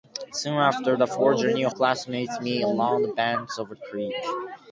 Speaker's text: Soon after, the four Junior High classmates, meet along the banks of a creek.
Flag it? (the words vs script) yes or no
yes